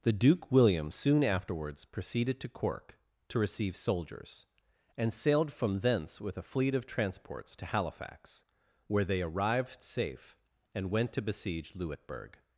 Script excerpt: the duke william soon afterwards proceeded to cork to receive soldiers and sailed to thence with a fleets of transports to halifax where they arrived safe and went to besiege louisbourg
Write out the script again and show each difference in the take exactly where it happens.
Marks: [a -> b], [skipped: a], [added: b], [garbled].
the duke william soon afterwards proceeded to cork to receive soldiers and sailed [to -> from] thence with a [fleets -> fleet] of transports to halifax where they arrived safe and went to besiege louisbourg